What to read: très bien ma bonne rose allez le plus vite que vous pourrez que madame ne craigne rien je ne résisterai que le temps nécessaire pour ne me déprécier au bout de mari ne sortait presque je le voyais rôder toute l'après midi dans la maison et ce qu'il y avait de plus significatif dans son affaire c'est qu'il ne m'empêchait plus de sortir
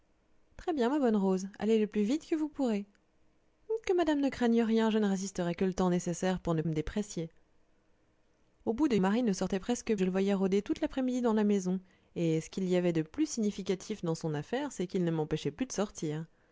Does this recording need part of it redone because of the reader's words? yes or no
no